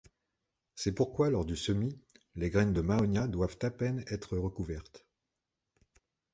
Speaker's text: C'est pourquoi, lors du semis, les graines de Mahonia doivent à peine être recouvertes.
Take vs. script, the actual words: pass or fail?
pass